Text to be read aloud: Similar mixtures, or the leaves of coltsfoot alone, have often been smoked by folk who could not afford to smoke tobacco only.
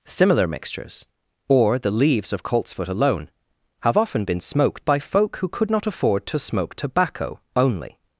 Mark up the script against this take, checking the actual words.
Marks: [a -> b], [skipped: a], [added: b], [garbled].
Similar mixtures, or the leaves of coltsfoot alone, have often been smoked by folk who could not afford to smoke tobacco only.